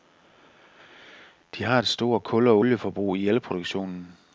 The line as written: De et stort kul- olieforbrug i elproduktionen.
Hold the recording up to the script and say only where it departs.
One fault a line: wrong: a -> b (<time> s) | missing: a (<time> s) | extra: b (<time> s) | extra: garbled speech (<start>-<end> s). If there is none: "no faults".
extra: har (1.6 s)
extra: og (2.5 s)